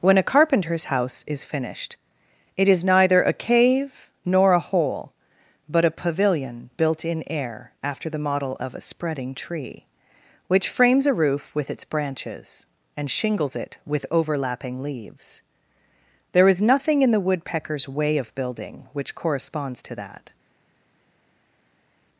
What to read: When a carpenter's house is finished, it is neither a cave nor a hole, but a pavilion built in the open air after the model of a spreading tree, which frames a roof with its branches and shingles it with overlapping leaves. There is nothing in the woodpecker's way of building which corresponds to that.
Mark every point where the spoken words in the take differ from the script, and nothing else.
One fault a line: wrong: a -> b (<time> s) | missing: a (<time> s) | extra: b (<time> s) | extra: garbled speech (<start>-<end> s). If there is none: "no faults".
missing: the open (7.2 s)